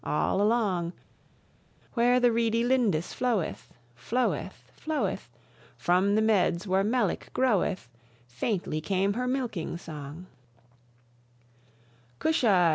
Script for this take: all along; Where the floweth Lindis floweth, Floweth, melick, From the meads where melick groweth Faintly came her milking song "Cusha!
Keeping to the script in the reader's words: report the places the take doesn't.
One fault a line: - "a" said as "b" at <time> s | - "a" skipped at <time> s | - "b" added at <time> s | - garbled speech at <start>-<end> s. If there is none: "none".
- "floweth" said as "reedy" at 2.3 s
- "melick" said as "floweth" at 4.8 s